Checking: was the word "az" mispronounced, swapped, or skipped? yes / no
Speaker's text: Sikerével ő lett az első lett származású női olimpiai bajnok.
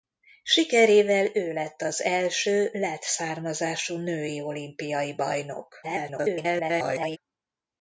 no